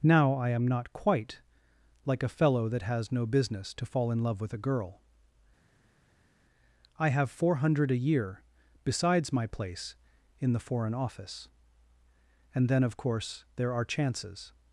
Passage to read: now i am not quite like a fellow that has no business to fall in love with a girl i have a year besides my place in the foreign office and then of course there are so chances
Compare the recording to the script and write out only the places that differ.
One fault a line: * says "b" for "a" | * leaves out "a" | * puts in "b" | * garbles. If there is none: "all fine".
* puts in "four hundred"
* leaves out "so"